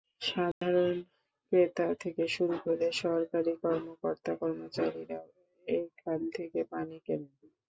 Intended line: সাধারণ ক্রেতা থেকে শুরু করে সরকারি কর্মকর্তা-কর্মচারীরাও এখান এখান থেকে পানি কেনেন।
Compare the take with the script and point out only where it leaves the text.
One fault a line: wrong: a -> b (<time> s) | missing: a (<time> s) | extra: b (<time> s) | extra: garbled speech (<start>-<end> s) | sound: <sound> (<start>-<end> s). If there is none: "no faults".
sound: dropout (0.5-0.6 s)
missing: এখান (6.2 s)